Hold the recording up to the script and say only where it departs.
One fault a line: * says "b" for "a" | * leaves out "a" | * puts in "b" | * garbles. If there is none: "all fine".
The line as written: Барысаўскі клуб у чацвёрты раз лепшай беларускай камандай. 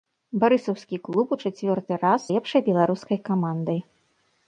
all fine